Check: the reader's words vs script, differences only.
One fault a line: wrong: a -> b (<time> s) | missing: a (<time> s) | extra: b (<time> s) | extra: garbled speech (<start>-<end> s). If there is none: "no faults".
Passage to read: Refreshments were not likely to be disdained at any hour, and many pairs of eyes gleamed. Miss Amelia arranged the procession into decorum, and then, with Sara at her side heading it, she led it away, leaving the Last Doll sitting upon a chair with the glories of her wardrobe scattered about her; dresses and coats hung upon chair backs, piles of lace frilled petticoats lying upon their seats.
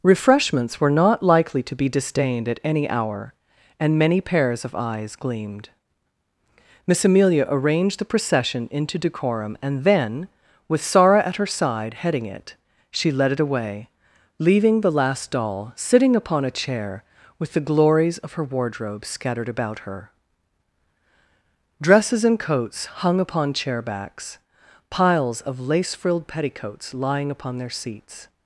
no faults